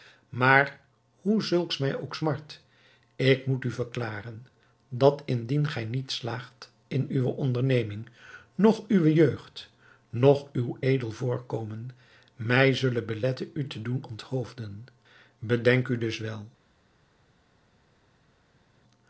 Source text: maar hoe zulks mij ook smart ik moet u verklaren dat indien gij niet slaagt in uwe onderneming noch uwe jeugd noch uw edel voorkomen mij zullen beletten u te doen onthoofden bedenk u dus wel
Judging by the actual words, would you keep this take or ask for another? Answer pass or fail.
pass